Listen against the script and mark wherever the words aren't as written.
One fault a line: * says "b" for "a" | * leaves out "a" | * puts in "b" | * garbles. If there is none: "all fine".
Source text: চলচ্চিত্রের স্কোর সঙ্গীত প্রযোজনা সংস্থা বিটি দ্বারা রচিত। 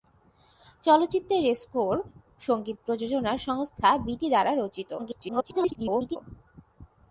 * garbles